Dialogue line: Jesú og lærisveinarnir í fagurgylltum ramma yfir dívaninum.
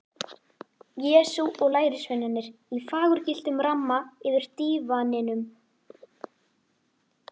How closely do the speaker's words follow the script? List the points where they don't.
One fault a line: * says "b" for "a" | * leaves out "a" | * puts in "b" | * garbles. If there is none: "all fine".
all fine